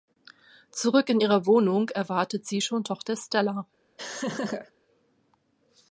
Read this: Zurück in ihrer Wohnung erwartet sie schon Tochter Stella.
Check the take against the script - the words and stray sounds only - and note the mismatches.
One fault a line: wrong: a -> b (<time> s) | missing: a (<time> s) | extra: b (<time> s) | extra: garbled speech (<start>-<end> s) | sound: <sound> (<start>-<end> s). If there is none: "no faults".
sound: laugh (4.0-4.7 s)